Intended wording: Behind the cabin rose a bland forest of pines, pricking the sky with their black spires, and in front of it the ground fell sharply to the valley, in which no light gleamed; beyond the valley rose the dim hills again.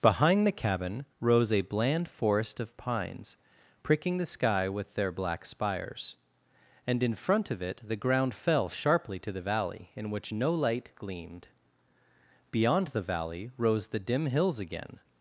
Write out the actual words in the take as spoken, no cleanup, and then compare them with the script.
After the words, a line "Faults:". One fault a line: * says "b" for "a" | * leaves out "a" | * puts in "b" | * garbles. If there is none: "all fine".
Behind the cabin rose a bland forest of pines, pricking the sky with their black spires, and in front of it the ground fell sharply to the valley, in which no light gleamed; beyond the valley rose the dim hills again.
Faults:
all fine